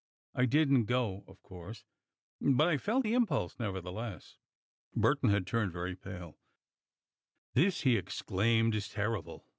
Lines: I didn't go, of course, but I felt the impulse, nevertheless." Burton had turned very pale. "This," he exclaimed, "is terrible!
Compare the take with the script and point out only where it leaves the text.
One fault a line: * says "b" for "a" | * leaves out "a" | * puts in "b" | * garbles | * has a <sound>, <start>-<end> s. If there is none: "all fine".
all fine